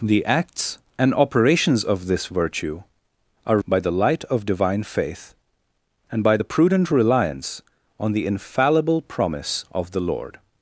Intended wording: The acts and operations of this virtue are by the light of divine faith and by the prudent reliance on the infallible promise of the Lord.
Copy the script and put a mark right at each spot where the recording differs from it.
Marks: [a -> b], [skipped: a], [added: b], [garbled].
The acts and operations of this virtue are by the light of divine faith and by the prudent reliance on the infallible promise of the Lord.